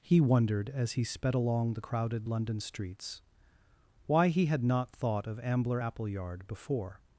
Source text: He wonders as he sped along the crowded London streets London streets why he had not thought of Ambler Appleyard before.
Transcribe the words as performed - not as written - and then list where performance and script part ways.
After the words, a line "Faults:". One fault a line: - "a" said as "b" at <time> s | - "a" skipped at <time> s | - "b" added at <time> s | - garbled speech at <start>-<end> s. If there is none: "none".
He wondered as he sped along the crowded London streets why he had not thought of Ambler Appleyard before.
Faults:
- "wonders" said as "wondered" at 0.2 s
- "London streets" skipped at 3.2 s